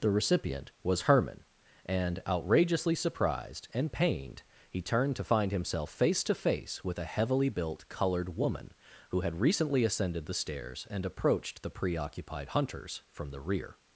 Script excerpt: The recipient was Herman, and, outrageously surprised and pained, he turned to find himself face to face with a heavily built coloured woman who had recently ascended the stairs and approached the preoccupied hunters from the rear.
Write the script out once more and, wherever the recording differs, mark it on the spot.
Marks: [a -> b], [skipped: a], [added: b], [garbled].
The recipient was Herman, and, outrageously surprised and pained, he turned to find himself face to face with a heavily built coloured woman who had recently ascended the stairs and approached the preoccupied hunters from the rear.